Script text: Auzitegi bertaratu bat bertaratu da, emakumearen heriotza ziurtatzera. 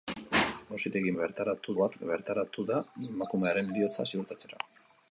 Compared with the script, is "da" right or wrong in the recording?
right